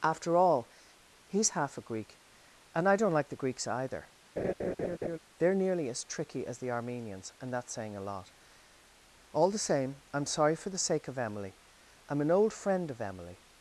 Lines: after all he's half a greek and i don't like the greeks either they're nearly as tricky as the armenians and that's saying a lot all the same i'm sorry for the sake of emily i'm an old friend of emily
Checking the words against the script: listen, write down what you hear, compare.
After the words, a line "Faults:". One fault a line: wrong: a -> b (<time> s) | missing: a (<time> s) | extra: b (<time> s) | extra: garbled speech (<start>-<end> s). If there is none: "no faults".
after all he's half a greek and i don't like the greeks either they're nearly as tricky as the armenians and that's saying a lot all the same i'm sorry for the sake of emily i'm an old friend of emily
Faults:
no faults